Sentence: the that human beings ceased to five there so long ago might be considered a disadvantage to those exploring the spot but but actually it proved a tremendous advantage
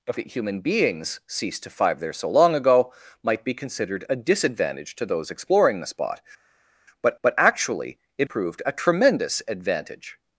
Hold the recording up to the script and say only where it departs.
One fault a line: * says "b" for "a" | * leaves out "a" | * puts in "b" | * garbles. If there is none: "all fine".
all fine